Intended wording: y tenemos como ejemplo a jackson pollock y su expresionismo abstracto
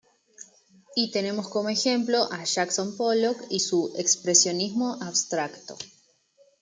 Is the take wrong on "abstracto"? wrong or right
right